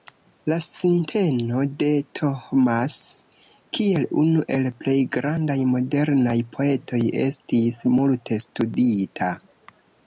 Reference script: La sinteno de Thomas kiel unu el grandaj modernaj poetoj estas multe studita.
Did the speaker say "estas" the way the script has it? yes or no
no